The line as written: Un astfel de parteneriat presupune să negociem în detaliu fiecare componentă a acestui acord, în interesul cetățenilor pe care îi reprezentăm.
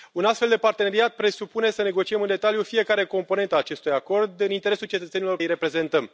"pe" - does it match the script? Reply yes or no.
no